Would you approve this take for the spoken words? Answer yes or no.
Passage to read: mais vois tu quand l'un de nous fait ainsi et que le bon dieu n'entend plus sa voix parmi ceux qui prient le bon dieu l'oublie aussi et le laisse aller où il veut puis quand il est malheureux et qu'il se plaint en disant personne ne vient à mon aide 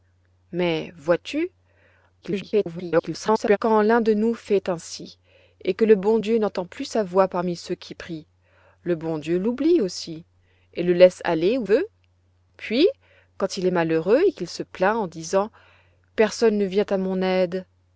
no